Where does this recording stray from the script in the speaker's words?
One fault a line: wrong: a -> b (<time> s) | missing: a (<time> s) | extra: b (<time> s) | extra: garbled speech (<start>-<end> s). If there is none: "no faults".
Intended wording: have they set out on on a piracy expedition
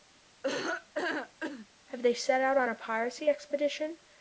missing: on (2.7 s)